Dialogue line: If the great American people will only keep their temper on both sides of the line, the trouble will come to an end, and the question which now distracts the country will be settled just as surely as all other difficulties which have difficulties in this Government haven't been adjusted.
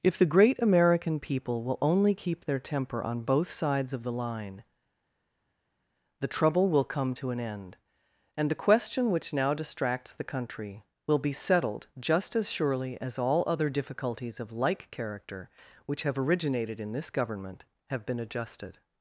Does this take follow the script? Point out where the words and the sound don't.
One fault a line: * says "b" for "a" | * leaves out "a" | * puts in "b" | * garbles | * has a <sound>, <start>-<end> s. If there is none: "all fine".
* puts in "of like character"
* says "originated" for "difficulties"
* says "have" for "haven't"